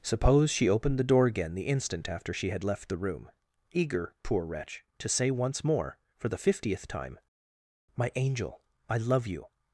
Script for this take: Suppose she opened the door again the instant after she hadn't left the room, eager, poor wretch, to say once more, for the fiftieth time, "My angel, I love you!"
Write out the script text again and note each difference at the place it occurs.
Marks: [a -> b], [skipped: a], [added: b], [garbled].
Suppose she opened the door again the instant after she [hadn't -> had] left the room, eager, poor wretch, to say once more, for the fiftieth time, "My angel, I love you!"